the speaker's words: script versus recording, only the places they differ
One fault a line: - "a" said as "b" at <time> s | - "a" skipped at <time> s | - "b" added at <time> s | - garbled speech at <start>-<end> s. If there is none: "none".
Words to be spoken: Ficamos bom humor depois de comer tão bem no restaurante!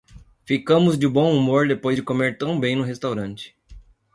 - "de" added at 1.0 s